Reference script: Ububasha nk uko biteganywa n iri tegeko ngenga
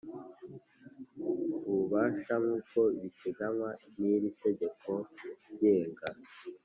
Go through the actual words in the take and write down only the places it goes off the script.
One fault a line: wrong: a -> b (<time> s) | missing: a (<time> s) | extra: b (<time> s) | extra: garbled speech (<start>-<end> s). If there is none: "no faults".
no faults